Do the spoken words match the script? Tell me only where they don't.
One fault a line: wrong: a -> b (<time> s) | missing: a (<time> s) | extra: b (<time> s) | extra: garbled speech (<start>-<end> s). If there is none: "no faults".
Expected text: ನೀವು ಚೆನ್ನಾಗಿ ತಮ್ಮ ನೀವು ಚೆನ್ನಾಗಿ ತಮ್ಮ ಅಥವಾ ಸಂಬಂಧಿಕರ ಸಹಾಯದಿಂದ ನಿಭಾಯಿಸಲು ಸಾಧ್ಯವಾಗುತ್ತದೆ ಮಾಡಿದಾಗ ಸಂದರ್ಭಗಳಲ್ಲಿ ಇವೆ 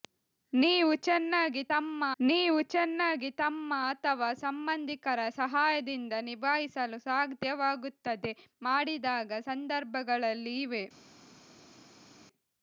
no faults